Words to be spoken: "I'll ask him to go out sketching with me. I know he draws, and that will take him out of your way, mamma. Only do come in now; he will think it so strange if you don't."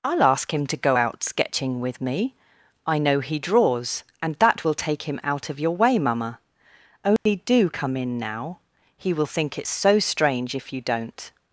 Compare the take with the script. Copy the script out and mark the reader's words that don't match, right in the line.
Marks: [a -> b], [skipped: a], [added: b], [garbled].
"I'll ask him to go out sketching with me. I know he draws, and that will take him out of your way, mamma. Only do come in now; he will think it so strange if you don't."